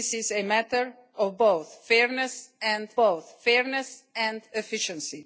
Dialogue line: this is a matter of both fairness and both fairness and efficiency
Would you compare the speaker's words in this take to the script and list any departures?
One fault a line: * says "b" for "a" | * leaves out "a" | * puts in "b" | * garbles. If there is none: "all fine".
all fine